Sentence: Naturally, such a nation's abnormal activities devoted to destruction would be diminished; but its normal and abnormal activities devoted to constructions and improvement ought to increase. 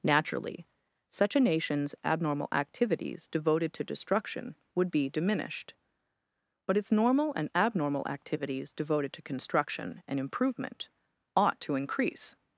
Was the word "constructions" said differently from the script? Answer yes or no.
yes